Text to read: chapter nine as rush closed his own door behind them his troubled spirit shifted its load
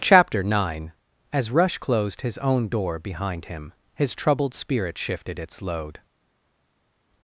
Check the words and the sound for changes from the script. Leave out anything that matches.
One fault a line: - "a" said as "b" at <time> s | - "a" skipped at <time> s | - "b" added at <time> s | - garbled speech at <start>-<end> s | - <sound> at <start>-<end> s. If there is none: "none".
- "them" said as "him" at 3.5 s